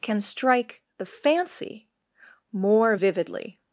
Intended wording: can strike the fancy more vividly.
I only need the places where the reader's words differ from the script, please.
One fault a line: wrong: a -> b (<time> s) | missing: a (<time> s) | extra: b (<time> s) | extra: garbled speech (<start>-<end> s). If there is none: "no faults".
no faults